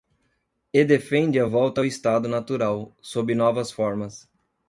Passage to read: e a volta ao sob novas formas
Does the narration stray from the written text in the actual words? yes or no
yes